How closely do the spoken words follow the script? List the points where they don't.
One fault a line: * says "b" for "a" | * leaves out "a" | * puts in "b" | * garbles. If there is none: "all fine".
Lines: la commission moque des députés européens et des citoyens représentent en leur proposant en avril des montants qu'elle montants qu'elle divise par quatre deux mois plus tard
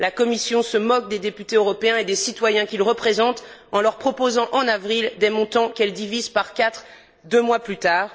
* puts in "se"
* puts in "qu'ils"
* leaves out "montants qu'elle"